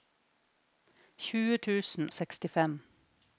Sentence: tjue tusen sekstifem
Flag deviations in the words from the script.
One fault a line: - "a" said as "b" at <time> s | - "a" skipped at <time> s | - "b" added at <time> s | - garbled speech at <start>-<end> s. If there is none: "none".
none